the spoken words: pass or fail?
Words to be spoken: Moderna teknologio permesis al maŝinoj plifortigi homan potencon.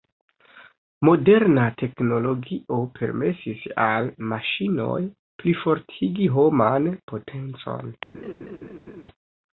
pass